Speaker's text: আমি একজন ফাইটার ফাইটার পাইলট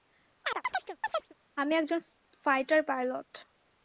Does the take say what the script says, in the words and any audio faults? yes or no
no